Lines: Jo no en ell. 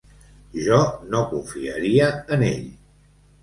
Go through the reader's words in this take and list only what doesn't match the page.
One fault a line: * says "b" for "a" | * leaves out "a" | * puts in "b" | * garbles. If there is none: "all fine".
* puts in "confiaria"